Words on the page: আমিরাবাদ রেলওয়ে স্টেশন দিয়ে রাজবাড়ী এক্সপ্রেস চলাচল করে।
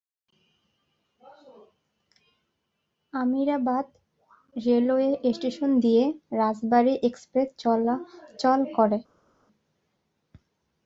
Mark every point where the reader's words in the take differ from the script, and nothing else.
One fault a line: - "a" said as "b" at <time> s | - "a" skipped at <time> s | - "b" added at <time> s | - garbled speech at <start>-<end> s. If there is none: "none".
none